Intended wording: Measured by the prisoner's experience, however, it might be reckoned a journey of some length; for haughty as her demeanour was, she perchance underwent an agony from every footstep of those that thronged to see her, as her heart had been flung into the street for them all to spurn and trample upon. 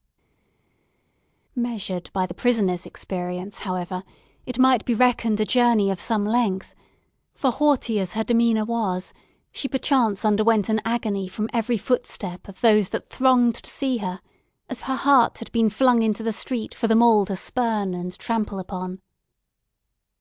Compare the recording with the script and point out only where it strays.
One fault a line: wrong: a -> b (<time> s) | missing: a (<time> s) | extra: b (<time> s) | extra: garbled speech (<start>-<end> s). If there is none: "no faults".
no faults